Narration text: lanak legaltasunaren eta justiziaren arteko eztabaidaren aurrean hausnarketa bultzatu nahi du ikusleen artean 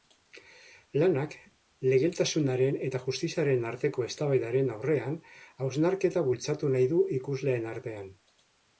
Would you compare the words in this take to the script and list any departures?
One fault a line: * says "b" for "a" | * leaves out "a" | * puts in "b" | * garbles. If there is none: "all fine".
all fine